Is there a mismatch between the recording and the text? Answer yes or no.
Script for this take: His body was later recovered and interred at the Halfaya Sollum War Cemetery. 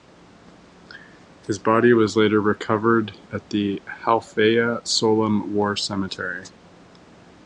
yes